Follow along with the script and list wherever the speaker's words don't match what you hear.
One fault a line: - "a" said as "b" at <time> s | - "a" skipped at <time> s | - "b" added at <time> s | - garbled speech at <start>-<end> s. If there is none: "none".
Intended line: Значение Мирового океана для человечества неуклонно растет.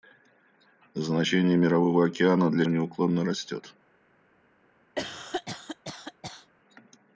- "человечества" skipped at 2.6 s